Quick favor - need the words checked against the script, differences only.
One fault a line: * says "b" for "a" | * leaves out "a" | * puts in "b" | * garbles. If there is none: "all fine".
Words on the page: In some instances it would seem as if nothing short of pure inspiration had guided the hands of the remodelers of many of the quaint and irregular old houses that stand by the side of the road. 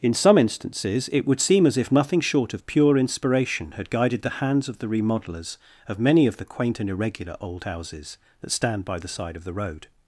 all fine